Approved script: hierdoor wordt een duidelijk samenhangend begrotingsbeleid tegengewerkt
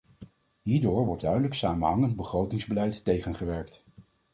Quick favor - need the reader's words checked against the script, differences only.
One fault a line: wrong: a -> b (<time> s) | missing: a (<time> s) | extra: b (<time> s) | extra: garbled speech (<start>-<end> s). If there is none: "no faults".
missing: een (1.2 s)